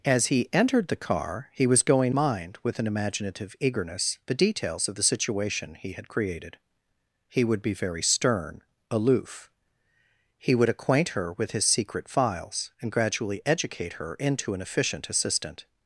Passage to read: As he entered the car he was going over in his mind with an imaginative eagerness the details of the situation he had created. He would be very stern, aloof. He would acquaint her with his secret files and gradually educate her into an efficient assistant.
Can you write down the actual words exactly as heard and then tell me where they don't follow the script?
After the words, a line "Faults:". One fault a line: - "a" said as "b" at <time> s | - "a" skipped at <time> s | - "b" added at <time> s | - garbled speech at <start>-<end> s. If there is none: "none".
As he entered the car he was going mind with an imaginative eagerness the details of the situation he had created. He would be very stern, aloof. He would acquaint her with his secret files and gradually educate her into an efficient assistant.
Faults:
- "over in his" skipped at 2.1 s